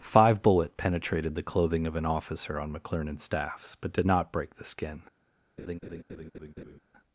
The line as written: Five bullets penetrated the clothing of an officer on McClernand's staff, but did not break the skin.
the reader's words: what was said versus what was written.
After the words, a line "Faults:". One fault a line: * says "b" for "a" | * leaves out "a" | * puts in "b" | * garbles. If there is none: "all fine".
Five bullet penetrated the clothing of an officer on McClernand's staffs, but did not break the skin.
Faults:
* says "bullet" for "bullets"
* says "staffs" for "staff"